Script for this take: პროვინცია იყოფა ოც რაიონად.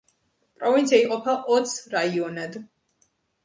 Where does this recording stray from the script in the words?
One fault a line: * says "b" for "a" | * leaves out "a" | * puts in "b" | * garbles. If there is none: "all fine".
all fine